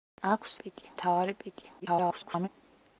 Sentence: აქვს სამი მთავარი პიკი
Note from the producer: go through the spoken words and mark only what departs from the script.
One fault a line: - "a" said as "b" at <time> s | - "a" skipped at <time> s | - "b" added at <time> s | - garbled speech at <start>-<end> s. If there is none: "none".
- "სამი" said as "პიკი" at 0.6 s
- garbled speech at 1.8-2.5 s